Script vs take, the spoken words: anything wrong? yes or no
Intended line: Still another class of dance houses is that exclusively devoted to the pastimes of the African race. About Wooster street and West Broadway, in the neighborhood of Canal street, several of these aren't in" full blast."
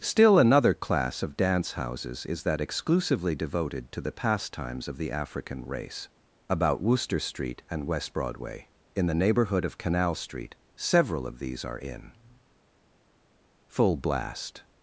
yes